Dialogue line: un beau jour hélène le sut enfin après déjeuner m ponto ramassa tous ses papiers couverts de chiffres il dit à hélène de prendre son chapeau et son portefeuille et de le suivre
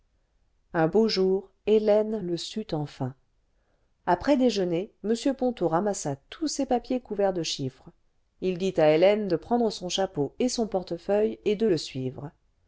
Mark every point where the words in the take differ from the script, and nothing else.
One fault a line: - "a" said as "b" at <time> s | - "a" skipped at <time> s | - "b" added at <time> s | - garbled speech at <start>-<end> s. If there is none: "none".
none